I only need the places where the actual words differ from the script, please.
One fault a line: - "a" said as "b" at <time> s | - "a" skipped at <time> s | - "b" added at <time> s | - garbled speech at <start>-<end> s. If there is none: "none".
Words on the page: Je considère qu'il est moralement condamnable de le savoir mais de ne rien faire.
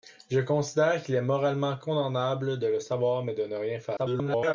- garbled speech at 4.0-4.5 s